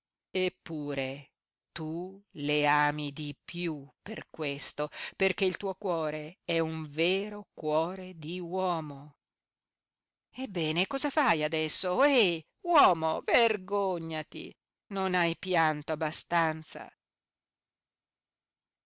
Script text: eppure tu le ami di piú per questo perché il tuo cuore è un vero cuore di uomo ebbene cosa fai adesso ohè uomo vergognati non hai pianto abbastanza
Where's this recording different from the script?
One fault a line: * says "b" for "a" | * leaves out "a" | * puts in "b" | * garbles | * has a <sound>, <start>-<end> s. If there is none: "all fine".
all fine